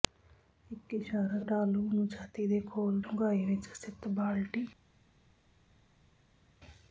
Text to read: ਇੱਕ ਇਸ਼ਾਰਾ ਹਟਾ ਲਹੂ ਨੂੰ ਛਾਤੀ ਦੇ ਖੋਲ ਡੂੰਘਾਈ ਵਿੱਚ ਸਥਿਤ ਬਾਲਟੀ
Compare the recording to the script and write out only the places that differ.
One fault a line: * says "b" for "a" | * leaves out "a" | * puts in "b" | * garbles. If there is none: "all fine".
all fine